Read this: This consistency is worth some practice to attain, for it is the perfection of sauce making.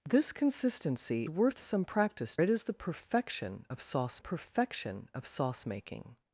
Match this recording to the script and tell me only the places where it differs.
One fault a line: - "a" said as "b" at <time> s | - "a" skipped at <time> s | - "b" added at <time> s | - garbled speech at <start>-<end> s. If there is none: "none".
- "is" skipped at 1.2 s
- "to attain for it is the" said as "it is the perfection of sauce" at 2.4 s